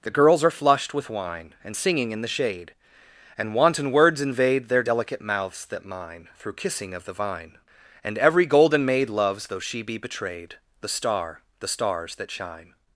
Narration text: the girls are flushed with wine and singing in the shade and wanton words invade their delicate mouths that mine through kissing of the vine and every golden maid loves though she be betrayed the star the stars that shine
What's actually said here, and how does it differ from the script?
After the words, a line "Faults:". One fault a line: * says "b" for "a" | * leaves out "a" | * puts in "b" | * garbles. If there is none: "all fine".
the girls are flushed with wine and singing in the shade and wanton words invade their delicate mouths that mine through kissing of the vine and every golden maid loves though she be betrayed the star the stars that shine
Faults:
all fine